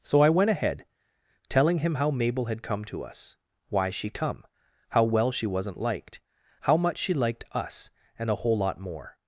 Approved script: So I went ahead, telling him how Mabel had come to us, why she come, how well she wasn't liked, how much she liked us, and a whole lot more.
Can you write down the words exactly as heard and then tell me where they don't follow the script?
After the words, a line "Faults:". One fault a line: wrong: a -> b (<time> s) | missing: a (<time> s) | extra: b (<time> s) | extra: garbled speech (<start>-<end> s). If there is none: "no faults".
So I went ahead, telling him how Mabel had come to us, why she come, how well she wasn't liked, how much she liked us, and a whole lot more.
Faults:
no faults